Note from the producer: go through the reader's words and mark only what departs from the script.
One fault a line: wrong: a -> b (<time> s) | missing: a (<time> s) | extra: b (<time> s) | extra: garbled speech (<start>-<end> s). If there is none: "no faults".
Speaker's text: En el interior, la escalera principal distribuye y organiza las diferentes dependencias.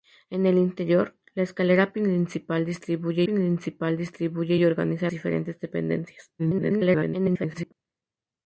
extra: principal distribuye (3.2 s)
missing: las (5.1 s)
extra: garbled speech (6.4-7.7 s)